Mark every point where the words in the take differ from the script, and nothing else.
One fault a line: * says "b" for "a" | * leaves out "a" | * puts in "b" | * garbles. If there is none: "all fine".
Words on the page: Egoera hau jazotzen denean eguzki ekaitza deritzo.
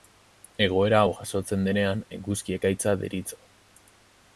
all fine